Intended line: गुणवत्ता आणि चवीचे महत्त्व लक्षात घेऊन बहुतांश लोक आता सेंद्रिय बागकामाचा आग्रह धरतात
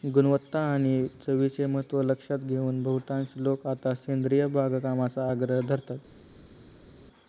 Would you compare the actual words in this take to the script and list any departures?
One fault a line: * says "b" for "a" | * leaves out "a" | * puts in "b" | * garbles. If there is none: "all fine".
all fine